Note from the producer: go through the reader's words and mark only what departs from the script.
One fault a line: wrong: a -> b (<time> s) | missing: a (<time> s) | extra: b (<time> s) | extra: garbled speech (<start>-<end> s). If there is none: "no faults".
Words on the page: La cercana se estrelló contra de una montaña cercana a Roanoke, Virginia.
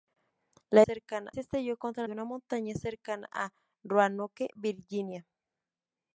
no faults